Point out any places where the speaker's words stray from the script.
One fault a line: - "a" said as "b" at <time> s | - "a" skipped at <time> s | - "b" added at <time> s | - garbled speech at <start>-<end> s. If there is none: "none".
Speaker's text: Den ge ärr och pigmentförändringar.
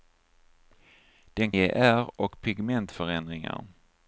none